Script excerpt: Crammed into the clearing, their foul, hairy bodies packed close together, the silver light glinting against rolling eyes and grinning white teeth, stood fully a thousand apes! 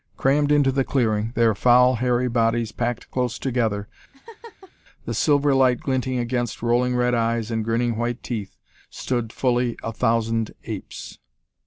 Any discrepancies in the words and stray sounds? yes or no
yes